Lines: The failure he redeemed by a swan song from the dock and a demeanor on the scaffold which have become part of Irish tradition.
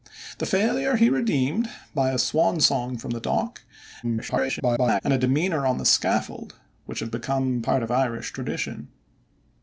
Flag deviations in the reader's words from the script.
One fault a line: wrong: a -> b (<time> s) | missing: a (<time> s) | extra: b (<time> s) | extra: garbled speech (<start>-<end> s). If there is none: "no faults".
extra: garbled speech (4.0-5.0 s)